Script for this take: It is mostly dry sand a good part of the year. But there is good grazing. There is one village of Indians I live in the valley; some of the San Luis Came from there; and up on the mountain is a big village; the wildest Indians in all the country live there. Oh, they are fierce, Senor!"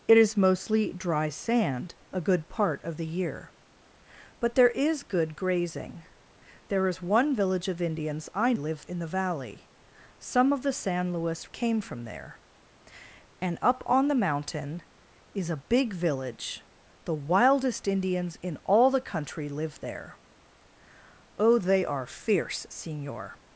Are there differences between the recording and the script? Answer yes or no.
no